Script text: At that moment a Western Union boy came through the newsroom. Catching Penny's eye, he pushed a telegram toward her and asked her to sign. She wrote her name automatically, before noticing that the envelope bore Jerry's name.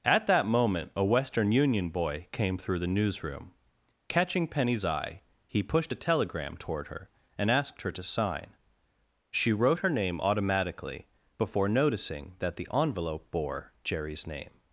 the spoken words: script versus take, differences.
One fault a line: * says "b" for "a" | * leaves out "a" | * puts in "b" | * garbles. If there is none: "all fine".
all fine